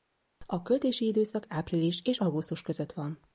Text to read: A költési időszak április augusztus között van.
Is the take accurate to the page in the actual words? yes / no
no